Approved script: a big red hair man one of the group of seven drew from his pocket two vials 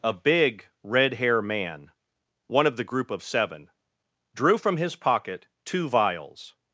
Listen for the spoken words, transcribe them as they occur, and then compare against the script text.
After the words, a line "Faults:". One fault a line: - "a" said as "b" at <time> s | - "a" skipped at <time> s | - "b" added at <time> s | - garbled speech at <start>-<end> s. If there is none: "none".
a big red hair man one of the group of seven drew from his pocket two vials
Faults:
none